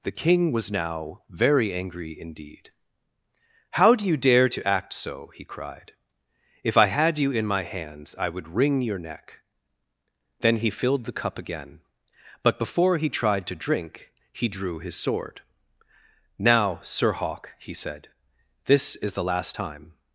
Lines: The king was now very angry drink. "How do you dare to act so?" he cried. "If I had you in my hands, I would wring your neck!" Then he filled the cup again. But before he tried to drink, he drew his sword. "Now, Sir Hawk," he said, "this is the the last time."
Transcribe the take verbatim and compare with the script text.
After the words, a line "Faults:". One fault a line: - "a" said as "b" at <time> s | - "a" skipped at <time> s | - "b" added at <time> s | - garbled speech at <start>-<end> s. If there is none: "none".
The king was now very angry indeed. "How do you dare to act so?" he cried. "If I had you in my hands, I would wring your neck!" Then he filled the cup again. But before he tried to drink, he drew his sword. "Now, Sir Hawk," he said, "this is the last time."
Faults:
- "drink" said as "indeed" at 2.2 s
- "the" skipped at 19.3 s